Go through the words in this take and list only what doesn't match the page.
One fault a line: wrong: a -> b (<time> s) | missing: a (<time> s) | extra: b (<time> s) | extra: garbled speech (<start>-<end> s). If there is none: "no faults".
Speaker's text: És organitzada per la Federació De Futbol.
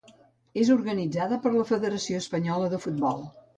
extra: Espanyola (2.2 s)